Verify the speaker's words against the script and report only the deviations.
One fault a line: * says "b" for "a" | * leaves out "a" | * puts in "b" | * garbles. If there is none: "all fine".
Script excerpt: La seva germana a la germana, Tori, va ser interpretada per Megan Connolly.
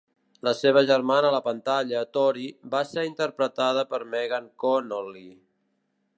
* says "pantalla" for "germana"